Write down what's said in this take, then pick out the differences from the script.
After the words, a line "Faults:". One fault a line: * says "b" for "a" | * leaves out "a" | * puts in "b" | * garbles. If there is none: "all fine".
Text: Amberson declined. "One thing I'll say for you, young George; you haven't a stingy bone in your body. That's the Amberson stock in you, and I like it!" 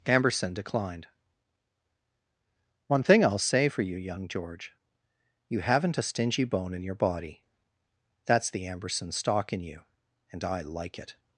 Amberson declined. "One thing I'll say for you, young George; you haven't a stingy bone in your body. That's the Amberson stock in you, and I like it!"
Faults:
all fine